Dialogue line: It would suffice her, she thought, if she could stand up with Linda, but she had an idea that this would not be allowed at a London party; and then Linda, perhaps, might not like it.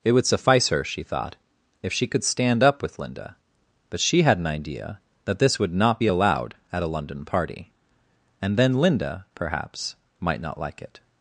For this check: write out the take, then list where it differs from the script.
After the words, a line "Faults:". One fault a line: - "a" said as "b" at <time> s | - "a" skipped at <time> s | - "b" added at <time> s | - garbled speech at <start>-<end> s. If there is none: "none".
It would suffice her, she thought, if she could stand up with Linda, but she had an idea that this would not be allowed at a London party; and then Linda, perhaps, might not like it.
Faults:
none